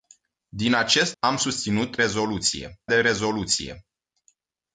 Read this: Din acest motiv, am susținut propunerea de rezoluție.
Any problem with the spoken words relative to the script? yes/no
yes